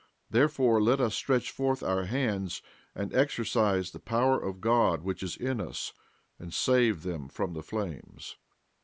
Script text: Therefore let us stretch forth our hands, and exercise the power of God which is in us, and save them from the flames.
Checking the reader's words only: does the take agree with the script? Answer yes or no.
yes